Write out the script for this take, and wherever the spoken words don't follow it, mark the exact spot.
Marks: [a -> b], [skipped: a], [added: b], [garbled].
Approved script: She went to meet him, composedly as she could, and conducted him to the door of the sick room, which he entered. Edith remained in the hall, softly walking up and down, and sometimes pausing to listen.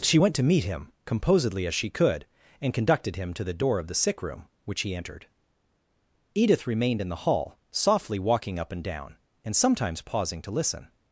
She went to meet him, composedly as she could, and conducted him to the door of the sick room, which he entered. Edith remained in the hall, softly walking up and down, and sometimes pausing to listen.